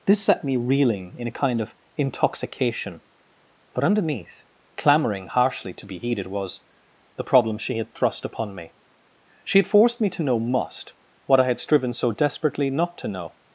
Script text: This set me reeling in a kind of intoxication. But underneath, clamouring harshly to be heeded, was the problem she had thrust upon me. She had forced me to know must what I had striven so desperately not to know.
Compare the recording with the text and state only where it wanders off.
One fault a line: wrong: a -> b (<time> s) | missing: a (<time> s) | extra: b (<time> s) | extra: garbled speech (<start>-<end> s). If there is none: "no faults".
no faults